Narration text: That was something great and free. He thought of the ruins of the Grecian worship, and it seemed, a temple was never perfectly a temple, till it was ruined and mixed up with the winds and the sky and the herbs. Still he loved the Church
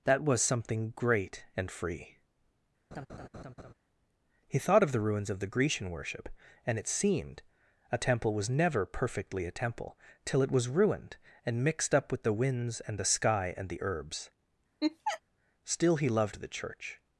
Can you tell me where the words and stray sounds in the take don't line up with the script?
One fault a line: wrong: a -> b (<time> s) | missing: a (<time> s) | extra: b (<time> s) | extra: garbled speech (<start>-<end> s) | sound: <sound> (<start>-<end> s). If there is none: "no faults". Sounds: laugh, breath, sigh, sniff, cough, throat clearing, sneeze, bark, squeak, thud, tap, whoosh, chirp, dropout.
sound: laugh (2.9-3.7 s)
sound: laugh (14.8-15.2 s)